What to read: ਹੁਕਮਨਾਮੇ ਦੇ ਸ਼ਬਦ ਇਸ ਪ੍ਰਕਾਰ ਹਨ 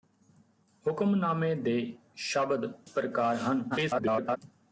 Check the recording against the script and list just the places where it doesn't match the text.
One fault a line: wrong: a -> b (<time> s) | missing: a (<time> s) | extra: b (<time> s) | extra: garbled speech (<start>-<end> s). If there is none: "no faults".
missing: ਇਸ (2.7 s)
extra: garbled speech (3.7-4.4 s)